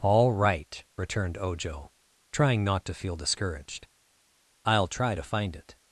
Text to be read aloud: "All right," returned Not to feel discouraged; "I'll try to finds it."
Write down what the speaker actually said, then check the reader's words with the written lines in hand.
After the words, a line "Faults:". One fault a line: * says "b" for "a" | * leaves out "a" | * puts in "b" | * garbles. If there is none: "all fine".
"All right," returned Ojo, trying not to feel discouraged; "I'll try to find it."
Faults:
* puts in "Ojo trying"
* says "find" for "finds"